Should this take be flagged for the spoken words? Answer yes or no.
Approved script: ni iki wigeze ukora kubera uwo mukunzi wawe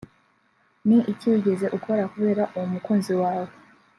no